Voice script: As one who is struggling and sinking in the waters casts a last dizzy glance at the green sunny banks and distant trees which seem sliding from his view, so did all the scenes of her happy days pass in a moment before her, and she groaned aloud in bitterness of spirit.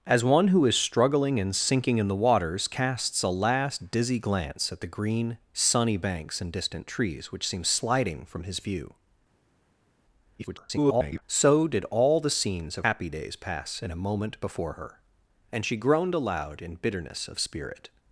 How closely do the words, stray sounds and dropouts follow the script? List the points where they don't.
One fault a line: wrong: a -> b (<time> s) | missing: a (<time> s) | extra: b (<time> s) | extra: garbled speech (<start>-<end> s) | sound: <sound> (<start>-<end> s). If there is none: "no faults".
extra: garbled speech (10.4-11.2 s)
missing: her (12.9 s)